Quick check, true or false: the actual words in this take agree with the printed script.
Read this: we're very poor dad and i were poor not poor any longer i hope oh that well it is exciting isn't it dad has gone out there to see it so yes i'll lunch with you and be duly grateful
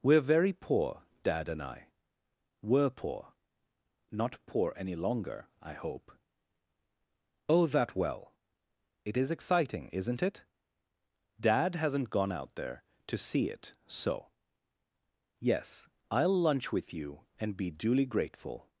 false